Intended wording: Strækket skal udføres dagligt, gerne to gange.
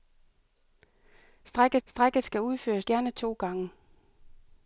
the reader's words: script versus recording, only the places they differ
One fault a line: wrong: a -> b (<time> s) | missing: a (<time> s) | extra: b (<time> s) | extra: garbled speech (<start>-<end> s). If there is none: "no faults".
extra: strækket (1.8 s)
missing: dagligt (2.9 s)